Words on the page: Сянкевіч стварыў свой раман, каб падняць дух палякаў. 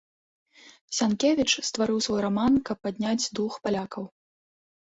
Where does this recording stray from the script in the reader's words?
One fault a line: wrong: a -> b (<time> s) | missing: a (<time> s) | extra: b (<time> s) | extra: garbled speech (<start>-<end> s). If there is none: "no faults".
no faults